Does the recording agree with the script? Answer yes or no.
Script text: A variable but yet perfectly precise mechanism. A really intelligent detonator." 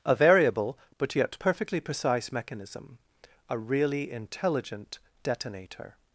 yes